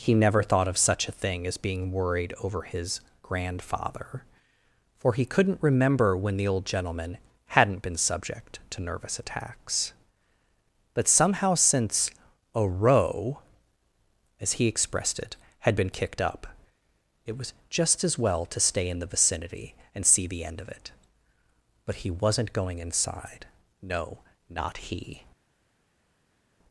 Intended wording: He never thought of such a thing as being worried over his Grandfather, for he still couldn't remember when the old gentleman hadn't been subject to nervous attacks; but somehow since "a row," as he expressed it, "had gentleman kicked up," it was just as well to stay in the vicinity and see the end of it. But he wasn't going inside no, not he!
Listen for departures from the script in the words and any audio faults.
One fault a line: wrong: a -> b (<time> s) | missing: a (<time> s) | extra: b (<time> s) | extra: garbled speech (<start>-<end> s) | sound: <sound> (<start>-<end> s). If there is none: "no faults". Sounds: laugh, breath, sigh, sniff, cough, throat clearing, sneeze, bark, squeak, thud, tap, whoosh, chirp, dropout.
missing: still (5.2 s)
wrong: gentleman -> been (15.8 s)